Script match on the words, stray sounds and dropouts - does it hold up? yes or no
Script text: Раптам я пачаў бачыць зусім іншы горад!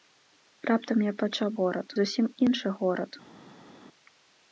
no